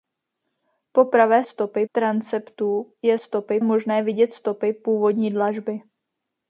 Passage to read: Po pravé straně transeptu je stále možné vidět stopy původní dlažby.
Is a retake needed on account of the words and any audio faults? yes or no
yes